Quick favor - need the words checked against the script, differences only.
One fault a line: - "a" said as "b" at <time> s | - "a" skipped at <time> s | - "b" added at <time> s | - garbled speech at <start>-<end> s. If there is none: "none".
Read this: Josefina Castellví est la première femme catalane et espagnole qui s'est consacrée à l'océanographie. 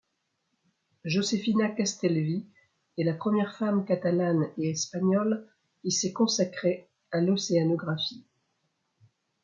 none